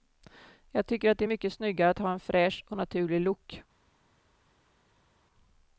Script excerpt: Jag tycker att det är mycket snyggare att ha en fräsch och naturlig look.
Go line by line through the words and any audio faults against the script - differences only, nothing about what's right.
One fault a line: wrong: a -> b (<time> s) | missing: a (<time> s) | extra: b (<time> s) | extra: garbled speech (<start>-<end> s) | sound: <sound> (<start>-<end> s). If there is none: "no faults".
no faults